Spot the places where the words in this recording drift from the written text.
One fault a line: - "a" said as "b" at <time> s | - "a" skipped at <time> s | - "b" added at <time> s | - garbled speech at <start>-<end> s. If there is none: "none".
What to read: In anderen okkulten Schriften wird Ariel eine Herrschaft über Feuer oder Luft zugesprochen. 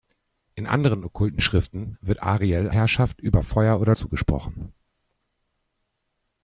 - "eine" skipped at 2.7 s
- "Luft" skipped at 4.0 s